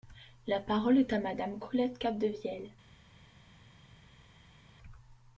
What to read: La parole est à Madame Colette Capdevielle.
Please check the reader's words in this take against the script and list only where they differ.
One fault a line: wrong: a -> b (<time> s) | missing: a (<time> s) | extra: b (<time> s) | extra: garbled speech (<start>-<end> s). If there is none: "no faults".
no faults